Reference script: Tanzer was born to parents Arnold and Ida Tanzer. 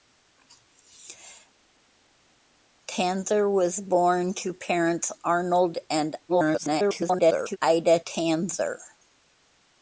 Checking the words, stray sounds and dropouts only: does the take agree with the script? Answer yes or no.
no